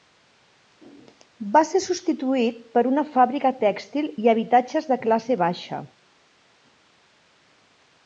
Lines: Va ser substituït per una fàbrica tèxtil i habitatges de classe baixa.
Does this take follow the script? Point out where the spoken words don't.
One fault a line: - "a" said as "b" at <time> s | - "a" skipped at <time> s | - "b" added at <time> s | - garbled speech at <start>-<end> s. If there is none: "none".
none